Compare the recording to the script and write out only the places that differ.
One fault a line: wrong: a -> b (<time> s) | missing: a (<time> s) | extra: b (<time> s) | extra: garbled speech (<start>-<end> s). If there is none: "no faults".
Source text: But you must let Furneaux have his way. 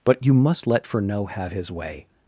no faults